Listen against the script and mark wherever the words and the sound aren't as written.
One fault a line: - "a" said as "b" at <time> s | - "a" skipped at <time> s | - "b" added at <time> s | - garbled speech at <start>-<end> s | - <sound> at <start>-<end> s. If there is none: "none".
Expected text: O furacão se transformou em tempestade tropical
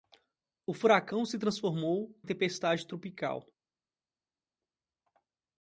- "em" skipped at 2.2 s